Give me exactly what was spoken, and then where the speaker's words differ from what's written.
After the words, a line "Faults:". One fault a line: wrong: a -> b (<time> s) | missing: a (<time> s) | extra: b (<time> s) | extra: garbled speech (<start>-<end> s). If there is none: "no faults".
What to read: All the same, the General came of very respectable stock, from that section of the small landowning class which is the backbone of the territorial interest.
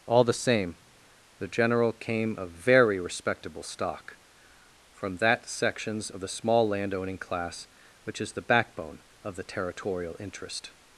All the same, the General came of very respectable stock, from that sections of the small landowning class which is the backbone of the territorial interest.
Faults:
wrong: section -> sections (5.5 s)